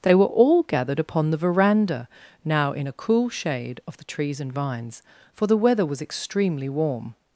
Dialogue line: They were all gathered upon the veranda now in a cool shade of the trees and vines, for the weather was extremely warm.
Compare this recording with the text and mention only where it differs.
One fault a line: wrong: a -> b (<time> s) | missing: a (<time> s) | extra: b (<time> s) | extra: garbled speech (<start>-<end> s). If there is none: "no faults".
no faults